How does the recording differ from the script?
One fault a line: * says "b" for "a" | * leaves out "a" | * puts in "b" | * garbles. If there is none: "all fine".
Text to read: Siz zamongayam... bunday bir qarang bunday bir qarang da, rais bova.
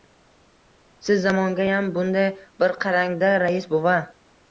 * leaves out "bunday bir qarang"